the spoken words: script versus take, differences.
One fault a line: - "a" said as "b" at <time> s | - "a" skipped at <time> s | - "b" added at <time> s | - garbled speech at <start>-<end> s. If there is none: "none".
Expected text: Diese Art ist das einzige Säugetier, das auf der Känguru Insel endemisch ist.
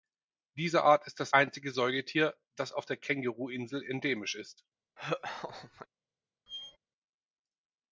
none